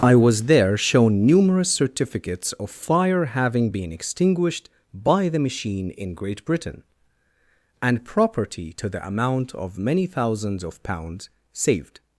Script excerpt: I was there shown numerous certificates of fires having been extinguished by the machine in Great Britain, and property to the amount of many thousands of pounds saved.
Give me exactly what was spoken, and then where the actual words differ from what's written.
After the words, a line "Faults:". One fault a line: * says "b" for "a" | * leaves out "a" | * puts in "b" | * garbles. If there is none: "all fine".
I was there shown numerous certificates of fire having been extinguished by the machine in Great Britain, and property to the amount of many thousands of pounds saved.
Faults:
* says "fire" for "fires"